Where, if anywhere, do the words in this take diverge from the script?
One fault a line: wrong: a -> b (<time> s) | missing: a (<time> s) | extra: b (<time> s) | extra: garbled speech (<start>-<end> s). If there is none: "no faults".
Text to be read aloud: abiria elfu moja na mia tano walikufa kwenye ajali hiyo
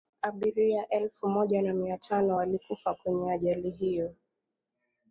no faults